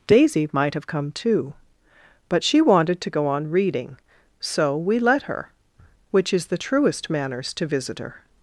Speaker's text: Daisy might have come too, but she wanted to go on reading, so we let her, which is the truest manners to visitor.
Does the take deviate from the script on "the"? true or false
false